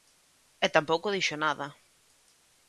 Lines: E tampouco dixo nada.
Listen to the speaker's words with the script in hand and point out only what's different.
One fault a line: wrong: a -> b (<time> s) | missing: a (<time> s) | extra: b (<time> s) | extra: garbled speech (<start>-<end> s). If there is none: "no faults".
no faults